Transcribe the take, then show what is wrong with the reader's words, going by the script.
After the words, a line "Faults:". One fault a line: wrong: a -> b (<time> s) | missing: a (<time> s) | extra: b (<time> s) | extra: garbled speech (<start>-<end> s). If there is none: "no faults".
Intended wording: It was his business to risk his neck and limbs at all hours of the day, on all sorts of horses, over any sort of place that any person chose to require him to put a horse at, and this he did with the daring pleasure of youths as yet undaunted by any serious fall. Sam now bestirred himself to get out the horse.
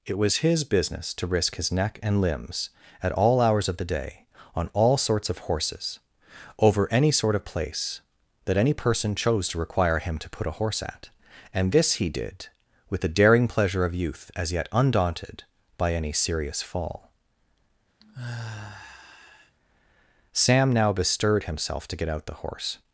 It was his business to risk his neck and limbs at all hours of the day, on all sorts of horses, over any sort of place that any person chose to require him to put a horse at, and this he did with the daring pleasure of youth as yet undaunted by any serious fall. Sam now bestirred himself to get out the horse.
Faults:
wrong: youths -> youth (13.9 s)